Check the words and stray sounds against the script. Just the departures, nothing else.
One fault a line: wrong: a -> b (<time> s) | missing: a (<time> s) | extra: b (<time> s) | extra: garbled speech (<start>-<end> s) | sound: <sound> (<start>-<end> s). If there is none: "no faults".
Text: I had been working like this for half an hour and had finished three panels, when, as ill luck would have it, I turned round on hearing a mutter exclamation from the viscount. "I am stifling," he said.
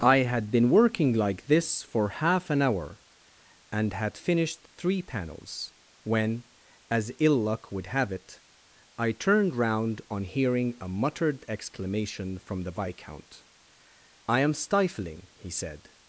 wrong: mutter -> muttered (10.9 s)